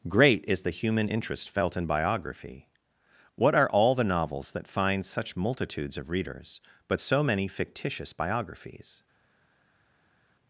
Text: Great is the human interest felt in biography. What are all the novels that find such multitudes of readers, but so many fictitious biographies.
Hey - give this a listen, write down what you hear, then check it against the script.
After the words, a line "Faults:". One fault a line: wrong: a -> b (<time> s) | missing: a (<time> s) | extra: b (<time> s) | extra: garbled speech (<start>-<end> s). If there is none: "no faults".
Great is the human interest felt in biography. What are all the novels that find such multitudes of readers, but so many fictitious biographies.
Faults:
no faults